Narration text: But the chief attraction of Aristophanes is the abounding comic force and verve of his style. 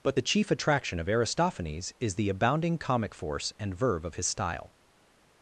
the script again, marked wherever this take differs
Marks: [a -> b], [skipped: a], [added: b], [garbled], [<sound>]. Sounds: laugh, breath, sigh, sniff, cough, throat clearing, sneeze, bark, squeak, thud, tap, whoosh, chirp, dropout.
But the chief attraction of Aristophanes is the abounding comic force and verve of his style.